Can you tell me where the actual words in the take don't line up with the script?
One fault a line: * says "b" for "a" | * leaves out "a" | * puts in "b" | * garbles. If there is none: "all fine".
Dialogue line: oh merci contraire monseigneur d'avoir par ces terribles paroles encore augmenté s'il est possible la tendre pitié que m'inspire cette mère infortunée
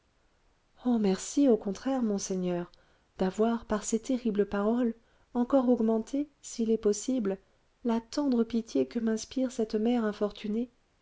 * puts in "au"